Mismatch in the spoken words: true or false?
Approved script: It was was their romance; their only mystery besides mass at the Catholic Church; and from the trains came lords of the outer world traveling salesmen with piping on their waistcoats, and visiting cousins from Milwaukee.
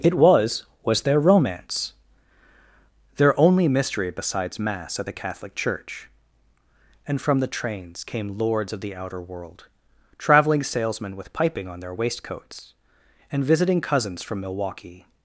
false